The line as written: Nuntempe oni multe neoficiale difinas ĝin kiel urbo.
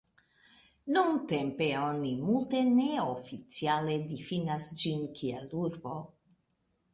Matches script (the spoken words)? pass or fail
pass